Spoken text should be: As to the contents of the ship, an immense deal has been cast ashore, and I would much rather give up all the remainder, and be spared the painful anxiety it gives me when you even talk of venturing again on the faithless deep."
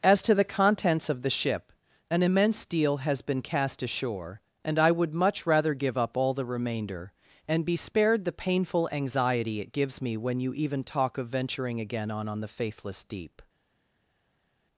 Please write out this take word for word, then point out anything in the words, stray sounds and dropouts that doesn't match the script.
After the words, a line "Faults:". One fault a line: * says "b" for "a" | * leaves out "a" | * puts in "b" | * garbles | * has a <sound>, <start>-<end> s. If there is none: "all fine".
As to the contents of the ship, an immense deal has been cast ashore, and I would much rather give up all the remainder, and be spared the painful anxiety it gives me when you even talk of venturing again on on the faithless deep."
Faults:
* puts in "on"